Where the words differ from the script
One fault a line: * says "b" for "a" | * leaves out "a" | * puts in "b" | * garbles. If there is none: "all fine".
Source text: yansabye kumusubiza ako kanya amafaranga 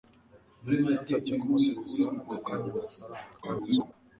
* garbles